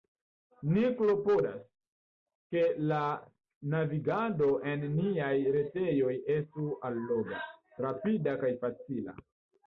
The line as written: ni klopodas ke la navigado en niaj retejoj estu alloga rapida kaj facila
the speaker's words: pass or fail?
pass